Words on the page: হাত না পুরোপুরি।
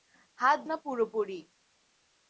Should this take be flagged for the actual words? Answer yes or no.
no